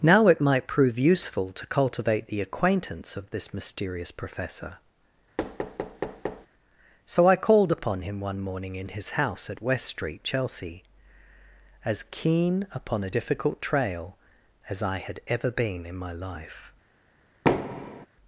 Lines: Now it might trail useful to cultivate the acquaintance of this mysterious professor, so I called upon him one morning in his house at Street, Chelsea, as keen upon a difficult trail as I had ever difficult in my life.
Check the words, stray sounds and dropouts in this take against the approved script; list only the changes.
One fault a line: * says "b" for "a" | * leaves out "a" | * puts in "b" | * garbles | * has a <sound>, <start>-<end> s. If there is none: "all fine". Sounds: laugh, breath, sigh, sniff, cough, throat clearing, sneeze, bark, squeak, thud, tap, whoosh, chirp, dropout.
* says "prove" for "trail"
* has a thud, 5.4-6.5 s
* puts in "West"
* says "been" for "difficult"
* has a thud, 17.4-18.1 s